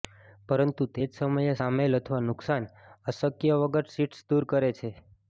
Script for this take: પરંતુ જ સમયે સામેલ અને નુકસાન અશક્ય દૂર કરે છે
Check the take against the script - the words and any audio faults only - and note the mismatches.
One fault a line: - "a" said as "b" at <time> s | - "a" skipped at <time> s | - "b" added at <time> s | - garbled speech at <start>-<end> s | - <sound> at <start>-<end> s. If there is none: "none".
- "તે" added at 0.9 s
- "અને" said as "અથવા" at 2.0 s
- "વગર શીટ્સ" added at 3.6 s